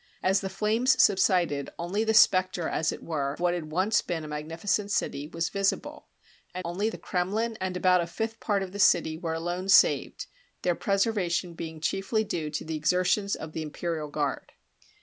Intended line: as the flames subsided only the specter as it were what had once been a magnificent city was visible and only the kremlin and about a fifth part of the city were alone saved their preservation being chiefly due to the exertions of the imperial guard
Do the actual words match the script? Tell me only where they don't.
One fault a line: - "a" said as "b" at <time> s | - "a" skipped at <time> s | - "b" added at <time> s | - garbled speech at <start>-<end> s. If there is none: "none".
none